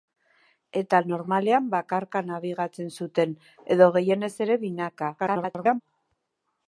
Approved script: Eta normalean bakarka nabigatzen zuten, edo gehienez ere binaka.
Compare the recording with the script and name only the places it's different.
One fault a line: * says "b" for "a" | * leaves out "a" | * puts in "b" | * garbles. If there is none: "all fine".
* garbles